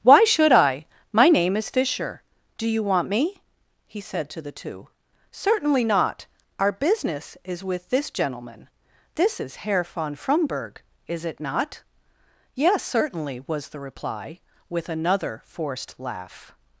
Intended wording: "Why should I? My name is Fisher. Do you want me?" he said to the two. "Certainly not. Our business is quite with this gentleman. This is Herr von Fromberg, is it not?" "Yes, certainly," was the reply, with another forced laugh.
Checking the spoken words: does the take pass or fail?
fail